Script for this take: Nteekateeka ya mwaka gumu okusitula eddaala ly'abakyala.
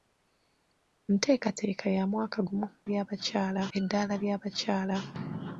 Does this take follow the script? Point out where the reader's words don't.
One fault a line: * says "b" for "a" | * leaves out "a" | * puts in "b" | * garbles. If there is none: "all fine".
* says "ly'abakyala" for "okusitula"